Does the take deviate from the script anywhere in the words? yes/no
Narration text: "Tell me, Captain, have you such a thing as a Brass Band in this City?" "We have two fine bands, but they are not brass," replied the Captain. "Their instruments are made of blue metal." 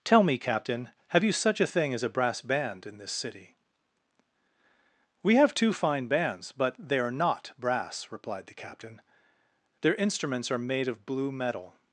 no